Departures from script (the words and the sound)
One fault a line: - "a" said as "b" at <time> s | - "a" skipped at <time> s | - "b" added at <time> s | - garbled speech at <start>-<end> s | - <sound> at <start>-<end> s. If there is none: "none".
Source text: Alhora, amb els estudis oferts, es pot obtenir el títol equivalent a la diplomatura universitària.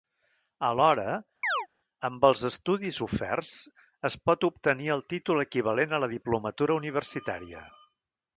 - chirp at 1.4-1.7 s